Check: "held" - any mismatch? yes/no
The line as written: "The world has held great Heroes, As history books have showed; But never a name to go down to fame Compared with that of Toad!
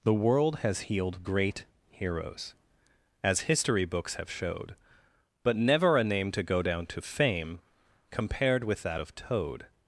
yes